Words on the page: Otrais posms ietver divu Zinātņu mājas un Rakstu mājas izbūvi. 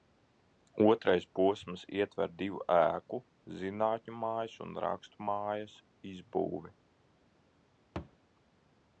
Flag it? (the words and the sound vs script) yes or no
yes